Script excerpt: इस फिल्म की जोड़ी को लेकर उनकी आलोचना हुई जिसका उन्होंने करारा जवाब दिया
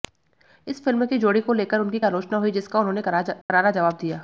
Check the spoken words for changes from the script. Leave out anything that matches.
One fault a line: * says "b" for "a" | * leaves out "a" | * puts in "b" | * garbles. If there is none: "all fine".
all fine